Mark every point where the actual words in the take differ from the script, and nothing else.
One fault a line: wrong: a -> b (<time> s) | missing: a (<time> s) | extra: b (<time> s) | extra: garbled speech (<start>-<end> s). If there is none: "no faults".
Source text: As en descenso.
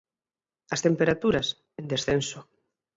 extra: temperaturas (0.9 s)